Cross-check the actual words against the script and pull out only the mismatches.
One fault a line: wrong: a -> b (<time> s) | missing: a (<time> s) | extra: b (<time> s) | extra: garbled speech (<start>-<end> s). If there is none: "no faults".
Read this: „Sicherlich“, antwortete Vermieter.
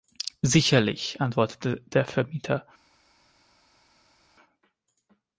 extra: der (1.8 s)